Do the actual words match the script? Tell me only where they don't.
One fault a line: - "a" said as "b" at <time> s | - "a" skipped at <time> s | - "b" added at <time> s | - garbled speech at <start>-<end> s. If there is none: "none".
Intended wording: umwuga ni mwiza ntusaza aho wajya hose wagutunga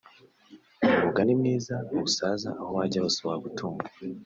none